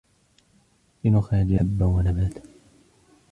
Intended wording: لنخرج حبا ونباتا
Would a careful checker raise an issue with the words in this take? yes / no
no